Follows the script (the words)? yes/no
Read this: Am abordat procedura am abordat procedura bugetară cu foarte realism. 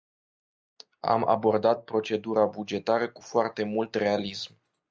no